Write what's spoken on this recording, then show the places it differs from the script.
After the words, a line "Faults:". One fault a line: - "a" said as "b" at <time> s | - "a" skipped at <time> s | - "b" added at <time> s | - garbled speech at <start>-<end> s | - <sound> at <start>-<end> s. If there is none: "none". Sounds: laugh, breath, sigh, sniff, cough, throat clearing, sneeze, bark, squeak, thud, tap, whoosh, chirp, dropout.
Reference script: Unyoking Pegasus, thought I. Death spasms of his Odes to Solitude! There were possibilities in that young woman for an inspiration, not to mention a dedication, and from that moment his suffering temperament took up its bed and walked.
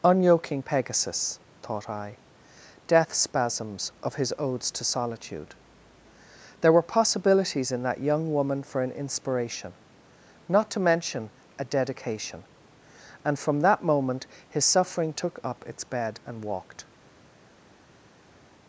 Unyoking Pegasus, thought I. Death spasms of his Odes to Solitude! There were possibilities in that young woman for an inspiration, not to mention a dedication, and from that moment his suffering took up its bed and walked.
Faults:
- "temperament" skipped at 15.1 s